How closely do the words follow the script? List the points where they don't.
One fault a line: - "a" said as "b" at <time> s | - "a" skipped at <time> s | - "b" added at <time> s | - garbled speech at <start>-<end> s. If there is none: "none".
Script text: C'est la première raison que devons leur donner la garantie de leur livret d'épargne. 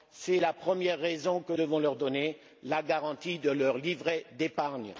none